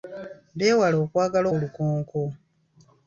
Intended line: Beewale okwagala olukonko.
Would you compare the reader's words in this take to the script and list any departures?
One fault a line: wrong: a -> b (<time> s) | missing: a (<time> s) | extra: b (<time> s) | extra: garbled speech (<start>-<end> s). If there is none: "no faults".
no faults